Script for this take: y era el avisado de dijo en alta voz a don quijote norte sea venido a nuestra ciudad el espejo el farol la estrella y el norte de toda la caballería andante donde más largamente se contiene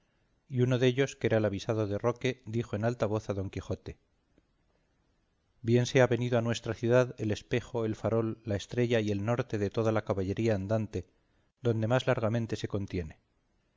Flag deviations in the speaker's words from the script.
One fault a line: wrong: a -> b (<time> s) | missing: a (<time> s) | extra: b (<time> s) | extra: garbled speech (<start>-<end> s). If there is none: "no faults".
extra: uno dellos que (0.6 s)
extra: roque (2.0 s)
wrong: norte -> bien (5.6 s)